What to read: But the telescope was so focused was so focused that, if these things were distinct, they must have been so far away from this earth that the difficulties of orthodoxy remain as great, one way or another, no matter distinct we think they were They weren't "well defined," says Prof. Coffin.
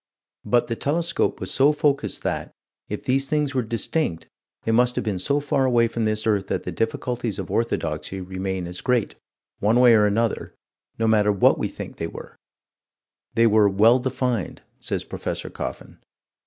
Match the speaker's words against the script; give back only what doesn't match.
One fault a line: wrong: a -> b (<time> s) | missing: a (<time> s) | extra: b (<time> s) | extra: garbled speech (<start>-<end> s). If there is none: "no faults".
missing: was so focused (2.2 s)
wrong: distinct -> what (11.3 s)
wrong: weren't -> were (13.5 s)